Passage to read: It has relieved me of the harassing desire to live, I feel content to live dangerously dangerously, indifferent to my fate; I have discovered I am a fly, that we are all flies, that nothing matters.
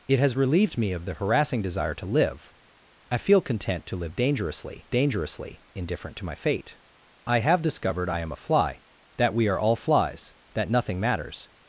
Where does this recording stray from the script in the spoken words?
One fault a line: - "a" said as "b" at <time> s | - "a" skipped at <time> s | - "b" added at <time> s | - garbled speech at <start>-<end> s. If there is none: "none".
none